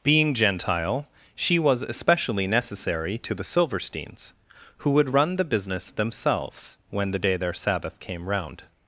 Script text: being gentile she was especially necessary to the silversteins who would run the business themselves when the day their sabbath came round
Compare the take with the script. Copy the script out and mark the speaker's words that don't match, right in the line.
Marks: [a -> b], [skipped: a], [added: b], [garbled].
being gentile she was especially necessary to the silversteins who would run the business themselves when the day their sabbath came round